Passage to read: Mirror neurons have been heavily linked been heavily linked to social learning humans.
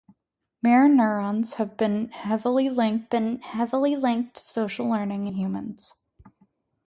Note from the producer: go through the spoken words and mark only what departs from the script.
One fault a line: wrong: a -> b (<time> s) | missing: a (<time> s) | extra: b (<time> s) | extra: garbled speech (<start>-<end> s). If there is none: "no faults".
no faults